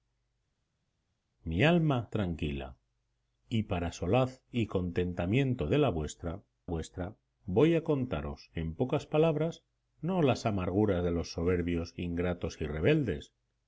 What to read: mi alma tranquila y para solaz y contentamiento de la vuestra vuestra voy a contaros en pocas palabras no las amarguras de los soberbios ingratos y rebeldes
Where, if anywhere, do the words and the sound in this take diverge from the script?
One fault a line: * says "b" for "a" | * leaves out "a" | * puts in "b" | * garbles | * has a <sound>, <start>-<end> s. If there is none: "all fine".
all fine